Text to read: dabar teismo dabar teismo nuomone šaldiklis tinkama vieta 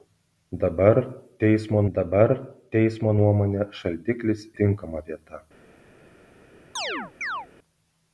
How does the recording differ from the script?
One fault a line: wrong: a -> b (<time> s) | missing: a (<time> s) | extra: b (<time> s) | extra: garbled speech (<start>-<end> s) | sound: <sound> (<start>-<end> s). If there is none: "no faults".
sound: chirp (6.8-7.5 s)